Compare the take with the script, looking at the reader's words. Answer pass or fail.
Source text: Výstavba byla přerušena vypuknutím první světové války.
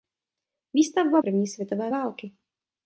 fail